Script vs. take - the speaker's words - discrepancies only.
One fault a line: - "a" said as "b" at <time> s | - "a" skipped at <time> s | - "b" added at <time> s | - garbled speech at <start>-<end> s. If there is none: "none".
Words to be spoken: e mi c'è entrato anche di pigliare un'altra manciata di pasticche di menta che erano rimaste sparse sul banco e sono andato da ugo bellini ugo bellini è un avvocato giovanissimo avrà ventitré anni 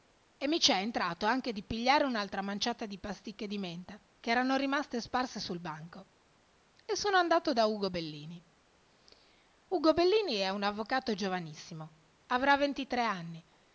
none